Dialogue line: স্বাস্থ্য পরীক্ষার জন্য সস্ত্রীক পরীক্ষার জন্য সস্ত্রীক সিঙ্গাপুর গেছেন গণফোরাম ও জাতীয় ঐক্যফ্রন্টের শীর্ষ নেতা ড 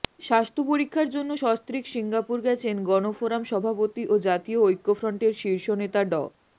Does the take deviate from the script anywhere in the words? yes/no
yes